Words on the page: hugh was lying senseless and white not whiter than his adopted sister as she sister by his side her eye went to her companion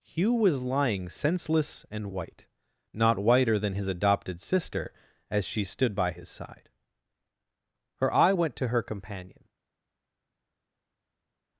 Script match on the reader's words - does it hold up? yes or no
no